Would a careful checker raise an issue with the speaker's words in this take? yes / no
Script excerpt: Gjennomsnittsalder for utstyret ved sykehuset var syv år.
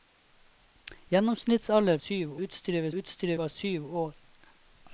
yes